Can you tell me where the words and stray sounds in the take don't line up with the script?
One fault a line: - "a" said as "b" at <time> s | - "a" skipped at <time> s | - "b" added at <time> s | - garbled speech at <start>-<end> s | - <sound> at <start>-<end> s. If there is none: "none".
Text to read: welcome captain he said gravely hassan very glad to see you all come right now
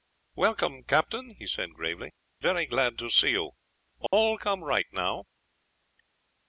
- "hassan" skipped at 2.1 s
- dropout at 4.1-4.1 s